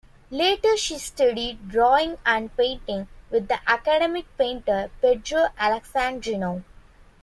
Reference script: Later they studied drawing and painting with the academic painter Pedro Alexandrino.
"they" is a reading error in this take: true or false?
true